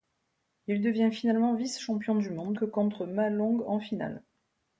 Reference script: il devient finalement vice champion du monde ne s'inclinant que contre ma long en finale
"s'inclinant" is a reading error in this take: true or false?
true